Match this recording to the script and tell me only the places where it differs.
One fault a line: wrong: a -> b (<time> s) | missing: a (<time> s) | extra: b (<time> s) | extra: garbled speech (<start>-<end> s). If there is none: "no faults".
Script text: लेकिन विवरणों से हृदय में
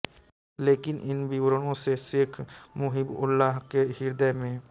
extra: इन (1.1 s)
extra: शेख मुहिबउल्लाह के (2.0 s)